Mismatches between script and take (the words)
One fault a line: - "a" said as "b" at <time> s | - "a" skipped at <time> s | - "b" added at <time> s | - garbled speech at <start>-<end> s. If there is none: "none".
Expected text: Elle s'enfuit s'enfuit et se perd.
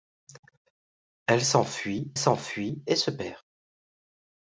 none